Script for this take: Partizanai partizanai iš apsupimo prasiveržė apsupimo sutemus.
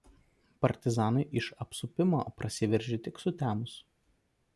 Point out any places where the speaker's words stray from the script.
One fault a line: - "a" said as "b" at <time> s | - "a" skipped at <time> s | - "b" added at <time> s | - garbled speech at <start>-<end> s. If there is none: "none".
- "partizanai" skipped at 1.2 s
- "apsupimo" said as "tik" at 3.1 s